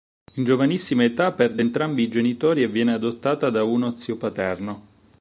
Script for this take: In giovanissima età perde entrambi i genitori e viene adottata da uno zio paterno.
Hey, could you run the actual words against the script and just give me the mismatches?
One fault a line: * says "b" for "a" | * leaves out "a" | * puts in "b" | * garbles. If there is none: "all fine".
all fine